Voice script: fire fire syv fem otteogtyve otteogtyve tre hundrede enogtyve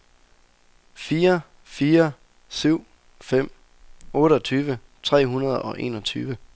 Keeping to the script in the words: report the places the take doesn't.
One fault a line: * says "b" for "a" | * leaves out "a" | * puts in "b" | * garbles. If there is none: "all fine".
* leaves out "otteogtyve"
* puts in "og"